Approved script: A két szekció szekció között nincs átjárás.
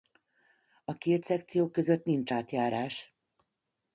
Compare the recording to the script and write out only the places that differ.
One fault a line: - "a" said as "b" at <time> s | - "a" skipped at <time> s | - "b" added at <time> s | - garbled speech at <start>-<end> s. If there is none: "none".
- "szekció" skipped at 1.7 s